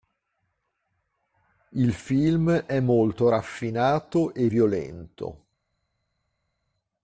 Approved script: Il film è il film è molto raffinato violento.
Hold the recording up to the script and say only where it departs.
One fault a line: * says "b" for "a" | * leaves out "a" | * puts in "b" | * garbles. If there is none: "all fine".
* leaves out "il film è"
* puts in "e"